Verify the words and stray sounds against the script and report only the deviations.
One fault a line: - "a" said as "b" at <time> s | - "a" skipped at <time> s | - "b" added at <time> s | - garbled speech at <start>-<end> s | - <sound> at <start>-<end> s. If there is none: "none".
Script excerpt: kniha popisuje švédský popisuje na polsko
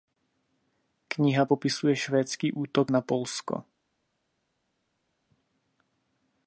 - "popisuje" said as "útok" at 2.5 s